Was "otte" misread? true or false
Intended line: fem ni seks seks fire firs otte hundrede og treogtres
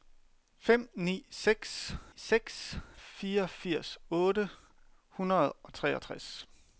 false